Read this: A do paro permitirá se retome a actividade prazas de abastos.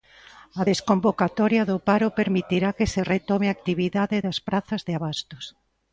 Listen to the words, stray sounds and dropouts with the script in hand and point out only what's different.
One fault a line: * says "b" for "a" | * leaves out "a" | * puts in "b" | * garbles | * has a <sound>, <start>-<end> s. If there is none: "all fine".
* puts in "desconvocatoria"
* puts in "que"
* puts in "das"